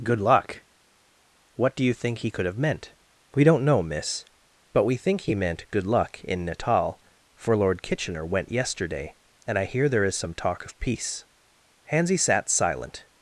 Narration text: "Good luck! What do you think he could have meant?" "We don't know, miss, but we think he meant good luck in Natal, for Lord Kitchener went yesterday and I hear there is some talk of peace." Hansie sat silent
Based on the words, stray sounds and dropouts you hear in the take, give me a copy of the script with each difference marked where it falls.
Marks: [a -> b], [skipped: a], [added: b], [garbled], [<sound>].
"Good luck! What do you think he could have meant?" "We don't know, miss, but we think he meant good luck in Natal, for Lord Kitchener went yesterday and I hear there is some talk of peace." Hansie sat silent